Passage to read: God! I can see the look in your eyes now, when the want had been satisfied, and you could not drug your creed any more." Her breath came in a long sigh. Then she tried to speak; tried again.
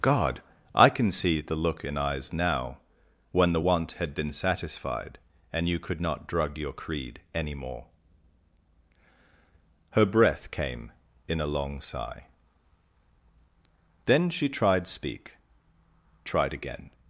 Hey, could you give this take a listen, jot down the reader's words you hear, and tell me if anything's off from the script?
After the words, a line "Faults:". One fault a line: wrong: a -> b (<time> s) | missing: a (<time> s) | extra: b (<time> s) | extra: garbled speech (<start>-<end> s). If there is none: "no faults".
God! I can see the look in eyes now, when the want had been satisfied, and you could not drug your creed any more." Her breath came in a long sigh. Then she tried speak; tried again.
Faults:
missing: your (2.0 s)
missing: to (14.9 s)